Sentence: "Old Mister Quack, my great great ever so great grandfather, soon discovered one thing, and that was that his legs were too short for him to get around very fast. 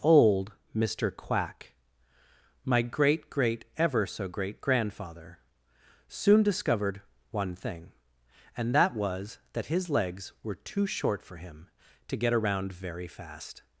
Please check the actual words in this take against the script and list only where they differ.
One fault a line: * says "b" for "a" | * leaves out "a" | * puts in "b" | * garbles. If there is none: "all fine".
all fine